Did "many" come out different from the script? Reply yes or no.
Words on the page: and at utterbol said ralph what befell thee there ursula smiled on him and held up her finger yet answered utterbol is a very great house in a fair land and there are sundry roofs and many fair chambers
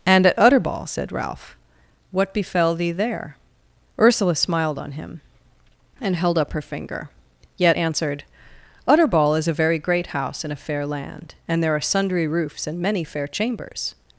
no